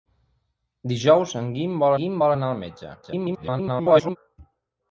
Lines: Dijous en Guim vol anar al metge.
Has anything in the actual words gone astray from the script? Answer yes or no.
yes